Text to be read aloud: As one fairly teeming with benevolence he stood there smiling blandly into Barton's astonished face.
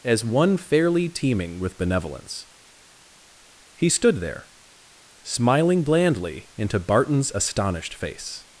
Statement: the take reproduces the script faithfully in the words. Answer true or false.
true